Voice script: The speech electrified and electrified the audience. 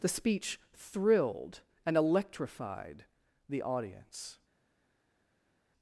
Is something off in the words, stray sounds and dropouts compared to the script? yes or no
yes